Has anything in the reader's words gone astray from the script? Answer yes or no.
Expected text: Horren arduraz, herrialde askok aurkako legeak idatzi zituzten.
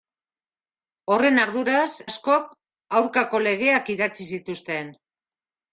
yes